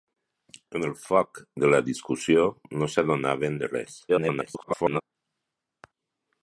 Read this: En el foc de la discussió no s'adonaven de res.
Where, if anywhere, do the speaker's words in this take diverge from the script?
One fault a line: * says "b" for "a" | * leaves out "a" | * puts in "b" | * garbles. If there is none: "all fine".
* garbles